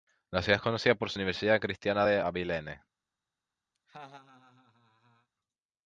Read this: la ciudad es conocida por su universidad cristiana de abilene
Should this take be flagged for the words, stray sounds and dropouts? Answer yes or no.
yes